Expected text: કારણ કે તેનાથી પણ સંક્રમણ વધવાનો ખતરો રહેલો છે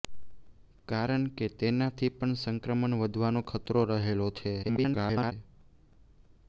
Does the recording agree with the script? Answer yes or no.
no